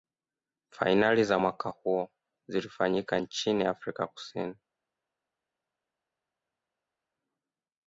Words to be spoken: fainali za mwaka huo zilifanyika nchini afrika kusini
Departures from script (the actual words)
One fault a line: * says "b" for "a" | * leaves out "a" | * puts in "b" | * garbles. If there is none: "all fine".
all fine